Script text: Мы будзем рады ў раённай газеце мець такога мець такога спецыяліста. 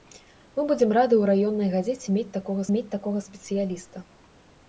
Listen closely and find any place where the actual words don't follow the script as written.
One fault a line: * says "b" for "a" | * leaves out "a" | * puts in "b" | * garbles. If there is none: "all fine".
all fine